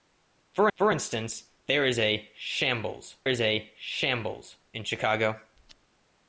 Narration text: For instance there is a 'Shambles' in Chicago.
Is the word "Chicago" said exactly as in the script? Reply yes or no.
yes